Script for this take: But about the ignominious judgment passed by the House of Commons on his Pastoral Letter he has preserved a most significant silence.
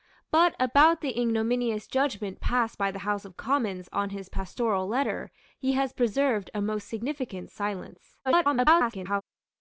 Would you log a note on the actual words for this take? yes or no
yes